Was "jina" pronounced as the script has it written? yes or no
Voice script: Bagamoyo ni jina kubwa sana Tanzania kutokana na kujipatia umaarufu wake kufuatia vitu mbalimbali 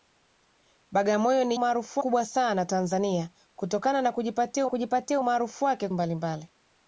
no